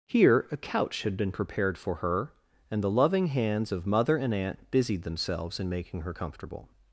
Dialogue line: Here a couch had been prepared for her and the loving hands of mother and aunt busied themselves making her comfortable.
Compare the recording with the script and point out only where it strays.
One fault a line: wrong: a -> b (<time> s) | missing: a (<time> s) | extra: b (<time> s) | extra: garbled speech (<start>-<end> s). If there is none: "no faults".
extra: in (5.6 s)